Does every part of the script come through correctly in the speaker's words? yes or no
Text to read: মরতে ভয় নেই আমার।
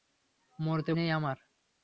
no